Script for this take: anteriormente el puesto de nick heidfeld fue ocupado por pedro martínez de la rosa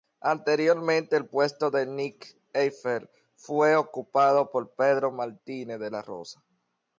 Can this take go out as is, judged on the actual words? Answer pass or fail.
pass